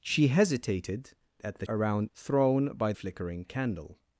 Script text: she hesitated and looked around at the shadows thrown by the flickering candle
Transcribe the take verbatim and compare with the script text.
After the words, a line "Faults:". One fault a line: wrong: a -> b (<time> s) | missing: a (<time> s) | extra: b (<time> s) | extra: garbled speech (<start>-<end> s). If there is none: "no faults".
she hesitated at the around thrown by flickering candle
Faults:
missing: and looked around (1.1 s)
wrong: shadows -> around (1.7 s)
missing: the (2.9 s)